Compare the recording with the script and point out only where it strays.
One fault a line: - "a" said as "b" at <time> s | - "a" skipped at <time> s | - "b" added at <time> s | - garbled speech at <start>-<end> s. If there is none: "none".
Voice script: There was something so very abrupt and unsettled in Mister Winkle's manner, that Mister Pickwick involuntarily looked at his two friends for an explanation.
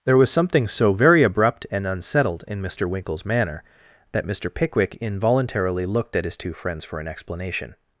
none